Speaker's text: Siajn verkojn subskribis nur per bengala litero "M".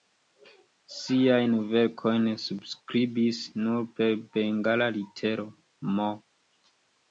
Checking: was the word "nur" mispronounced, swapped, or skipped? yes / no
no